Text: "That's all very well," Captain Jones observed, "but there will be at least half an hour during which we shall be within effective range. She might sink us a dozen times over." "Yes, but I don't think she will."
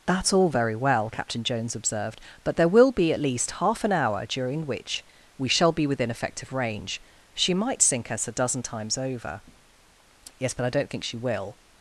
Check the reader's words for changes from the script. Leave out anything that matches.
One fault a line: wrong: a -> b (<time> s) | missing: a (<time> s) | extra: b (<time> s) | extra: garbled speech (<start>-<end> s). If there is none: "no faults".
no faults